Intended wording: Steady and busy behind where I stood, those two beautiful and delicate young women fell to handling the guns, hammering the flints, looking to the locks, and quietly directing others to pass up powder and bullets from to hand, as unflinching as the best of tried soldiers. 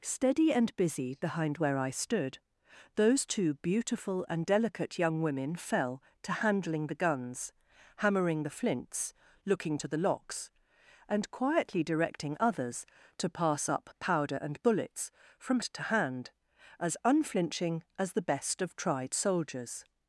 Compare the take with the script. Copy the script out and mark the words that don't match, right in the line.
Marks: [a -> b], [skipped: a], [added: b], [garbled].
Steady and busy behind where I stood, those two beautiful and delicate young women fell to handling the guns, hammering the flints, looking to the locks, and quietly directing others to pass up powder and bullets from to hand, as unflinching as the best of tried soldiers.